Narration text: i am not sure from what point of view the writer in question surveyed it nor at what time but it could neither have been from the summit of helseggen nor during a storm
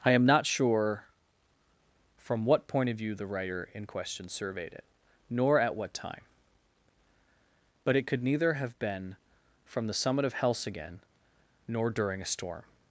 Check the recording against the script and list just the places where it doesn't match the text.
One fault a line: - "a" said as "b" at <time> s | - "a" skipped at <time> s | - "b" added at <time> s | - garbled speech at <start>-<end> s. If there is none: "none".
none